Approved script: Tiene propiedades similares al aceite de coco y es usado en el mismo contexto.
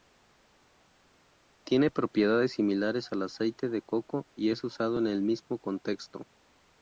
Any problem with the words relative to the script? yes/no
no